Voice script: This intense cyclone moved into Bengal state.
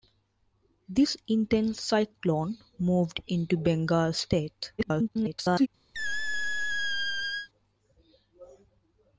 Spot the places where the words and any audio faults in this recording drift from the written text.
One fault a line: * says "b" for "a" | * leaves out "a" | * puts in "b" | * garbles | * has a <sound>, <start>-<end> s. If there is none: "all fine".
* garbles
* has a squeak, 5.9-7.5 s